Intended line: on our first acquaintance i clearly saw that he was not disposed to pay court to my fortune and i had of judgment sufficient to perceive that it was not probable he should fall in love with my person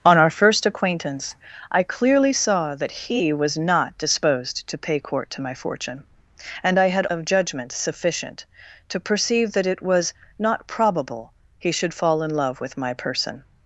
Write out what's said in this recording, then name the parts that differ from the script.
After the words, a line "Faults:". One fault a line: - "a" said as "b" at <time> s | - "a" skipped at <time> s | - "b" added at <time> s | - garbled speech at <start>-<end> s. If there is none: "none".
on our first acquaintance i clearly saw that he was not disposed to pay court to my fortune and i had of judgment sufficient to perceive that it was not probable he should fall in love with my person
Faults:
none